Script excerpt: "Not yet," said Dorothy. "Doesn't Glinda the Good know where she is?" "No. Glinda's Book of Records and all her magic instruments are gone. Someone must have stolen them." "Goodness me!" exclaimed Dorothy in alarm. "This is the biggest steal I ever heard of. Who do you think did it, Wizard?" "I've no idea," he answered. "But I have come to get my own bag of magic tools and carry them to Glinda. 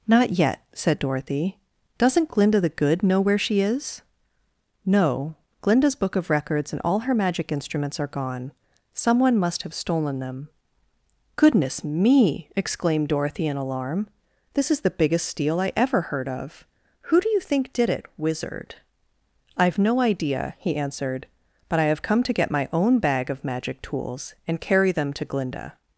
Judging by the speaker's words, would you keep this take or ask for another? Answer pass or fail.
pass